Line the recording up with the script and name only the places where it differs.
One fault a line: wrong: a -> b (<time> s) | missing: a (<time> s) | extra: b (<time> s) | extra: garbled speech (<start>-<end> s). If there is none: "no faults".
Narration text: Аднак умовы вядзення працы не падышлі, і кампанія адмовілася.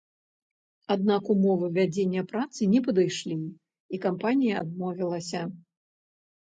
no faults